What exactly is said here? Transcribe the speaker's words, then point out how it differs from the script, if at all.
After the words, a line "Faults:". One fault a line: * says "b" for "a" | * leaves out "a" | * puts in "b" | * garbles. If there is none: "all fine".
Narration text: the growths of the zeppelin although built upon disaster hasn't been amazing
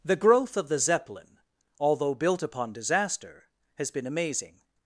the growth of the zeppelin although built upon disaster has been amazing
Faults:
* says "growth" for "growths"
* says "has" for "hasn't"